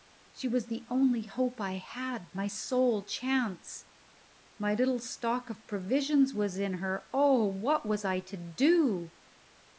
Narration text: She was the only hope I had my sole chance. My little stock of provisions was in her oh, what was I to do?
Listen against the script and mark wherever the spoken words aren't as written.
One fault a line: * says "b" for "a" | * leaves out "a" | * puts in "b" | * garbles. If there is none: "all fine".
all fine